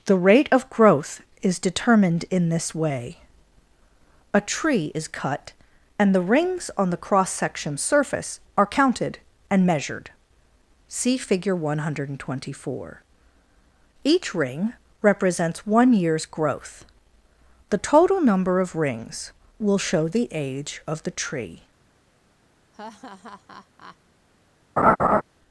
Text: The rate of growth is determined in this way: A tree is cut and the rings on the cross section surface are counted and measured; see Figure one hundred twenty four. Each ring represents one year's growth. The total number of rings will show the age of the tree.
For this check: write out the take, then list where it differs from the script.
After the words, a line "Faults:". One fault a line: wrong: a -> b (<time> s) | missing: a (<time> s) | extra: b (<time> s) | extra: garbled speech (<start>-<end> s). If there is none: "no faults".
The rate of growth is determined in this way: A tree is cut and the rings on the cross section surface are counted and measured; see Figure one hundred twenty four. Each ring represents one year's growth. The total number of rings will show the age of the tree.
Faults:
no faults